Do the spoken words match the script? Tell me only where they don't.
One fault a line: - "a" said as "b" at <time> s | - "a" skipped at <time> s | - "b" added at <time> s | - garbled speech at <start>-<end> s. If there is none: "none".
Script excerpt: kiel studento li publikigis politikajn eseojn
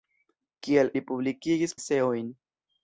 - "studento" skipped at 0.9 s
- "politikajn" skipped at 1.8 s